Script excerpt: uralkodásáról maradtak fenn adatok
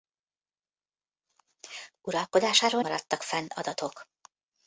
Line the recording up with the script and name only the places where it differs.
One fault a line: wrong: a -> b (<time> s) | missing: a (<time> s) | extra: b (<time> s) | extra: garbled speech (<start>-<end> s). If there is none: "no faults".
no faults